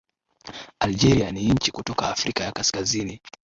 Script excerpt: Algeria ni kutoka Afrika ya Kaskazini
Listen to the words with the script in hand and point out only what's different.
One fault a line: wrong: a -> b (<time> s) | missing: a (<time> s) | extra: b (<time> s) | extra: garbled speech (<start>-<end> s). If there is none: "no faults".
extra: nchi (1.5 s)